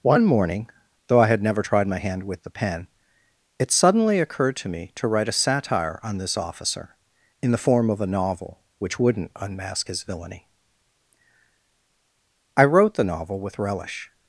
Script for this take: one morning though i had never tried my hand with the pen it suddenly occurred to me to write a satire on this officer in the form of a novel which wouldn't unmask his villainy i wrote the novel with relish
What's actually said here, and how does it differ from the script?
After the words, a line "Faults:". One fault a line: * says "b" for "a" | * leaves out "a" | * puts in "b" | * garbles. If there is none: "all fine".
one morning though i had never tried my hand with the pen it suddenly occurred to me to write a satire on this officer in the form of a novel which wouldn't unmask his villainy i wrote the novel with relish
Faults:
all fine